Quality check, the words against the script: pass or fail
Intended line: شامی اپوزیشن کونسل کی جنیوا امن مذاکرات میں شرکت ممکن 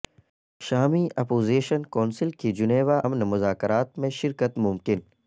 pass